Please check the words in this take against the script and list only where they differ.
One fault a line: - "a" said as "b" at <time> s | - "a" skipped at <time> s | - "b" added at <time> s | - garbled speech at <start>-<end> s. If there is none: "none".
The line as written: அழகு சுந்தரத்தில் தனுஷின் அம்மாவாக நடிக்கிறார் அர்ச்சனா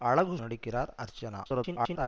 - "சுந்தரத்தில் தனுஷின் அம்மாவாக" skipped at 0.3 s
- garbled speech at 1.4-2.1 s